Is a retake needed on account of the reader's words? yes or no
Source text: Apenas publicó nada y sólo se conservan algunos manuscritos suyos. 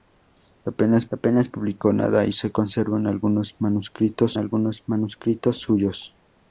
yes